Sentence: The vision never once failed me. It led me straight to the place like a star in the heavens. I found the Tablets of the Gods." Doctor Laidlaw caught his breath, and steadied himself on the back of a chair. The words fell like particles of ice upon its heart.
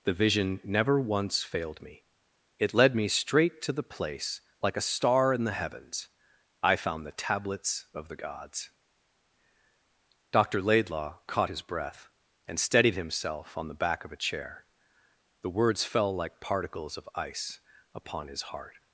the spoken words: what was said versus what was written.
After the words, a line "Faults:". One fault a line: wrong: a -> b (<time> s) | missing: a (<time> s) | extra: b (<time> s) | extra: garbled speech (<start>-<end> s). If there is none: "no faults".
The vision never once failed me. It led me straight to the place like a star in the heavens. I found the Tablets of the Gods." Doctor Laidlaw caught his breath, and steadied himself on the back of a chair. The words fell like particles of ice upon his heart.
Faults:
wrong: its -> his (18.3 s)